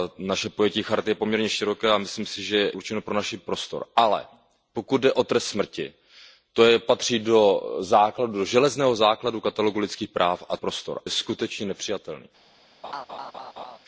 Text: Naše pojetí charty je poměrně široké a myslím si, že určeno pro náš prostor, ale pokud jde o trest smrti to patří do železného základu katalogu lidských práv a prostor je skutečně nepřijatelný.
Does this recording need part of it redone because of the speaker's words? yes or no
no